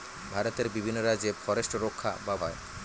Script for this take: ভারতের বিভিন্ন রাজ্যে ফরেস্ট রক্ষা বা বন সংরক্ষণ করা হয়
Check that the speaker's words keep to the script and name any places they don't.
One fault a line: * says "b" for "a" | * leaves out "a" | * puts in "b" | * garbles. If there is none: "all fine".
* leaves out "বন সংরক্ষণ করা"